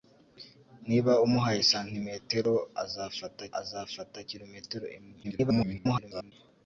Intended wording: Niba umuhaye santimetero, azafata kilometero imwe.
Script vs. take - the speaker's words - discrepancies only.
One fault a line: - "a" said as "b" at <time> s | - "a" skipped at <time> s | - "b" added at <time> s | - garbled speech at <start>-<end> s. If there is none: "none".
- "azafata" added at 3.6 s
- garbled speech at 5.2-6.3 s